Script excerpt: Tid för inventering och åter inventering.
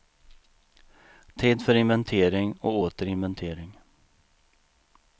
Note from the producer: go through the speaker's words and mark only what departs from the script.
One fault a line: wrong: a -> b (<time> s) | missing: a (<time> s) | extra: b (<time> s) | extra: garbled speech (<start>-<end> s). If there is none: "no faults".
no faults